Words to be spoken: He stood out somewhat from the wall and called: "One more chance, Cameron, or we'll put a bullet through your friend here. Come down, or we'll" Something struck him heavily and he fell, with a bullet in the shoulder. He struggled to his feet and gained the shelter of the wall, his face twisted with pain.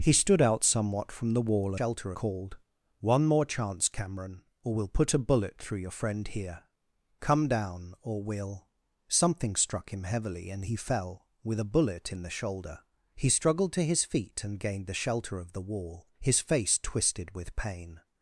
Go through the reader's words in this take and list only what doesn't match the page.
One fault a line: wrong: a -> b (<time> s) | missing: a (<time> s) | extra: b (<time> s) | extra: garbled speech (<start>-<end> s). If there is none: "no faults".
wrong: and -> shelter (1.7 s)